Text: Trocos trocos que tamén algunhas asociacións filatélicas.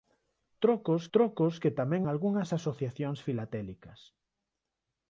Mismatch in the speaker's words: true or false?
false